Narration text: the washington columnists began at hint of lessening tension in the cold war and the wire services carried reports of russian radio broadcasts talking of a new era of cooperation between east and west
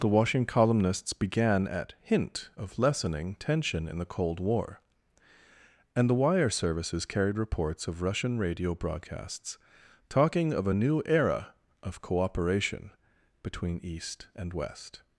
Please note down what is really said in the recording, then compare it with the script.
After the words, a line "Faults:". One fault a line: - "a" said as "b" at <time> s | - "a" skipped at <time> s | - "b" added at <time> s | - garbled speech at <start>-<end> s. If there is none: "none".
the washington columnists began at hint of lessening tension in the cold war and the wire services carried reports of russian radio broadcasts talking of a new era of cooperation between east and west
Faults:
none